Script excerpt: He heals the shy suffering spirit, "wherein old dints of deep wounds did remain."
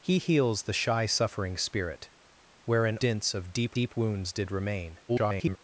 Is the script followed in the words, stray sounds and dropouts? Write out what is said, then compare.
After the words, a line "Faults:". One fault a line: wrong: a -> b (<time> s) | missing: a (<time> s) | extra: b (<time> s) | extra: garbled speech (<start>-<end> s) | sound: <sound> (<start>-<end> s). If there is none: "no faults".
He heals the shy suffering spirit, "wherein dints of deep deep wounds did remain." [garbled]
Faults:
missing: old (3.0 s)
extra: deep (3.7 s)
extra: garbled speech (5.1-5.6 s)